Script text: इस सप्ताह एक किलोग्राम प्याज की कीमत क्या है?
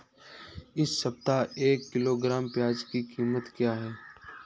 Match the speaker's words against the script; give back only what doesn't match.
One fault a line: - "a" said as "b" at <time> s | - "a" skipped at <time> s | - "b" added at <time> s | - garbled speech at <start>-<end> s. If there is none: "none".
none